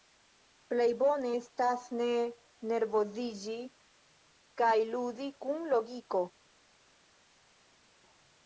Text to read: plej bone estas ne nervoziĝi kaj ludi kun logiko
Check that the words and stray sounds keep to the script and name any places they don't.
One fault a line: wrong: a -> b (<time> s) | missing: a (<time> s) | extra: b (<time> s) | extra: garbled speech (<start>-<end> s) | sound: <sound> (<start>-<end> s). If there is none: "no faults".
no faults